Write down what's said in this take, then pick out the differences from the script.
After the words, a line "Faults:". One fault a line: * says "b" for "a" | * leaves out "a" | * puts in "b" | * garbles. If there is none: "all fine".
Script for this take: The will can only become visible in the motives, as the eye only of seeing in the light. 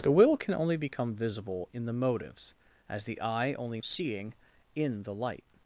The will can only become visible in the motives, as the eye only of seeing in the light.
Faults:
all fine